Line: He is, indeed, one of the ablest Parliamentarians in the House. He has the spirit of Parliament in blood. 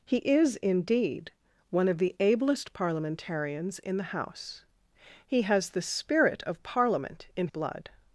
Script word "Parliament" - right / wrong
right